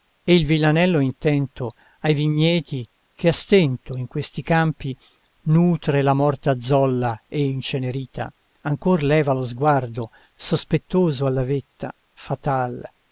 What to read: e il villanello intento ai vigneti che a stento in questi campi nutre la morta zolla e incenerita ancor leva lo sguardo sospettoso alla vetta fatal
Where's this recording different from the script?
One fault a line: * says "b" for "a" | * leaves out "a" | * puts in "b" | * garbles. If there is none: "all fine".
all fine